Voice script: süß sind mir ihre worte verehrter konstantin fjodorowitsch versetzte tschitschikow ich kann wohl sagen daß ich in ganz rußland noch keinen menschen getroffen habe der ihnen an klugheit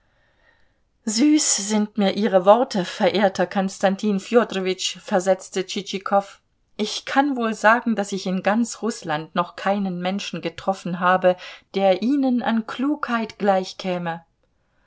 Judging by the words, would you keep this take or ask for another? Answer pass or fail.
pass